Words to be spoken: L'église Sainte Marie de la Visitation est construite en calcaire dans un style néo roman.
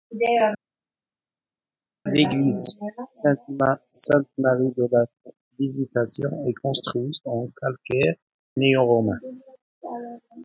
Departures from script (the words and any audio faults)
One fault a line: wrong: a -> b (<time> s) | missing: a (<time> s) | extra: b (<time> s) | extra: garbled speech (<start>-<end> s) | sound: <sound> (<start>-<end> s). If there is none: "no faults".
missing: dans un style (8.1 s)